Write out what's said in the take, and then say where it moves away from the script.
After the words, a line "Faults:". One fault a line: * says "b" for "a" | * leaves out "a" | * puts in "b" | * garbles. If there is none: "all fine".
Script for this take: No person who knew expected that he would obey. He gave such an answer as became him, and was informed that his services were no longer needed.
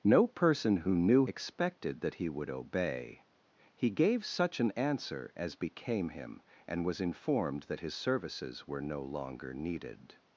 No person who knew expected that he would obey. He gave such an answer as became him, and was informed that his services were no longer needed.
Faults:
all fine